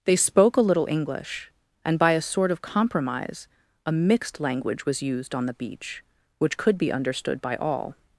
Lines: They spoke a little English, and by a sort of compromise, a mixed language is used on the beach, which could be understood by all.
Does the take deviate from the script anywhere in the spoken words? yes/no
yes